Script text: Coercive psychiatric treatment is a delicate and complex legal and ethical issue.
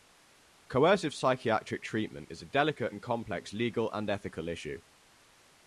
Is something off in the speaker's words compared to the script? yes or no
no